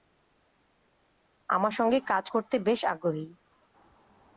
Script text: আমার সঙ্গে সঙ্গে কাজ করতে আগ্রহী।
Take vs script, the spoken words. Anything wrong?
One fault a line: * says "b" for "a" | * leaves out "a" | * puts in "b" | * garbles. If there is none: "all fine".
* leaves out "সঙ্গে"
* puts in "বেশ"